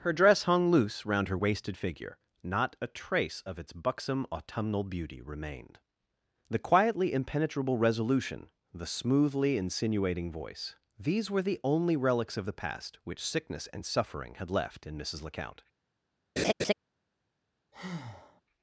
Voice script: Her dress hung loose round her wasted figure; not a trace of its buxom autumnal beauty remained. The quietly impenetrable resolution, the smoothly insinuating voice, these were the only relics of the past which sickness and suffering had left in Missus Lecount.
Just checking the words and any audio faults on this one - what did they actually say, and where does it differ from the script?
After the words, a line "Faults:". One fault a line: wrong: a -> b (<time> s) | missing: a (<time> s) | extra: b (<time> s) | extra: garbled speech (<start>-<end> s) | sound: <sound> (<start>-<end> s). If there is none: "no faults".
Her dress hung loose round her wasted figure; not a trace of its buxom autumnal beauty remained. The quietly impenetrable resolution, the smoothly insinuating voice, these were the only relics of the past which sickness and suffering had left in Missus Lecount.
Faults:
sound: laugh (16.4-16.7 s)
sound: breath (17.7-18.4 s)